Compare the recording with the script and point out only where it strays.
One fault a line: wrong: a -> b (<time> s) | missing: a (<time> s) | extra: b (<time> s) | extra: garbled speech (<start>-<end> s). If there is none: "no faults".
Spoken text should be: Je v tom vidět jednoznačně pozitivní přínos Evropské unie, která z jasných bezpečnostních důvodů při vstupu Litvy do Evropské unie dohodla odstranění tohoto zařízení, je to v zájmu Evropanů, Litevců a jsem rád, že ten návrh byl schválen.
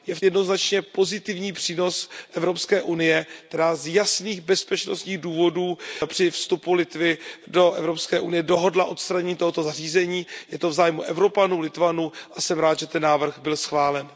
missing: tom vidět (0.2 s)